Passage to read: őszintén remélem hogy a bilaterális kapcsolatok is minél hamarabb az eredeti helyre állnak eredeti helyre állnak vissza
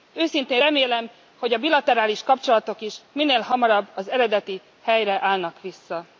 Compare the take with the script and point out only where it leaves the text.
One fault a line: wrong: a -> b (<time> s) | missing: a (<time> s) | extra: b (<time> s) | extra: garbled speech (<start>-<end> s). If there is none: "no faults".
missing: eredeti helyre állnak (5.6 s)